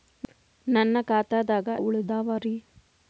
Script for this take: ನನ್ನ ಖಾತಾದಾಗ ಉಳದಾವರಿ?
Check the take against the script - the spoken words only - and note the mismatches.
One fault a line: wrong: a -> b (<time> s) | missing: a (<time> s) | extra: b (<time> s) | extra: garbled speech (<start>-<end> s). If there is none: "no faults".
no faults